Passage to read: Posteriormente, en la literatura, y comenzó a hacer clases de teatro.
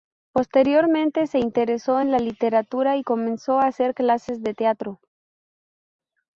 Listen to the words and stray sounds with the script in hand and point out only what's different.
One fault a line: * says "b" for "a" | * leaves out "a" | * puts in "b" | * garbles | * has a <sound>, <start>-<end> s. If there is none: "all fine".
* puts in "se interesó"